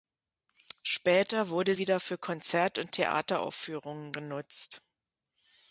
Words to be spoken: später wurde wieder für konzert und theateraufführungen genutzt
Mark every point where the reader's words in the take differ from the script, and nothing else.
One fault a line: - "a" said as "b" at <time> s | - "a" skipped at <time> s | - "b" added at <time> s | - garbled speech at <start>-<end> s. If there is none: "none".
none